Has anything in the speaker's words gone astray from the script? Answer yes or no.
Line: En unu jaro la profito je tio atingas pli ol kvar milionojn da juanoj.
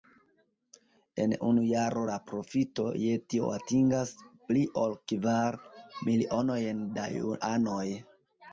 no